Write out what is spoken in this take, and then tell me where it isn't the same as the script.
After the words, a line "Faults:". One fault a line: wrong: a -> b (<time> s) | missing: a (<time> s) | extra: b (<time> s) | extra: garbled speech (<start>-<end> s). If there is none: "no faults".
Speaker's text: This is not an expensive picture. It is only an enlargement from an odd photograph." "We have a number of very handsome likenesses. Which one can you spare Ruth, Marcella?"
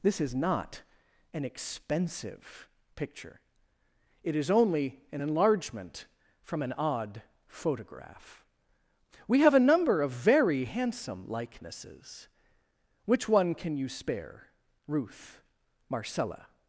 This is not an expensive picture. It is only an enlargement from an odd photograph." "We have a number of very handsome likenesses. Which one can you spare Ruth, Marcella?"
Faults:
no faults